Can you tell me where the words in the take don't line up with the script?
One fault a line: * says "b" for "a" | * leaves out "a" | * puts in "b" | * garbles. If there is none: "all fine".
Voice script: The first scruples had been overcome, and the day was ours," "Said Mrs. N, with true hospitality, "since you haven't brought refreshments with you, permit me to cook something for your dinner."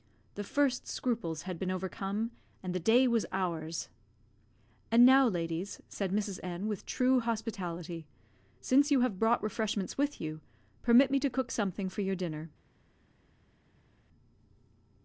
* puts in "And now ladies"
* says "have" for "haven't"